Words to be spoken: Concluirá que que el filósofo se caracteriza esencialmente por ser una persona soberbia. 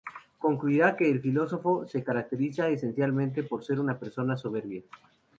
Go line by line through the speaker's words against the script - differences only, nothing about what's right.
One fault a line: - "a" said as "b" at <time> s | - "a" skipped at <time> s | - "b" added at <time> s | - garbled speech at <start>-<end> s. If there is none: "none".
- "que" skipped at 1.1 s